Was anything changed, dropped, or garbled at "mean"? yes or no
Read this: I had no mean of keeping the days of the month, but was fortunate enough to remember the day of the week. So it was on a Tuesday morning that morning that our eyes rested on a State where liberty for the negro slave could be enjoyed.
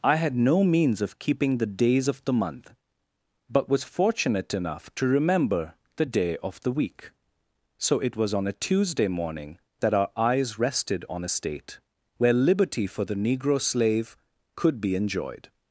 yes